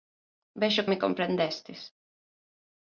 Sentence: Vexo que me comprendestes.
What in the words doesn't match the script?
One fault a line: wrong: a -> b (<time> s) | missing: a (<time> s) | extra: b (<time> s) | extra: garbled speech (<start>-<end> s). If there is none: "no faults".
missing: que (0.9 s)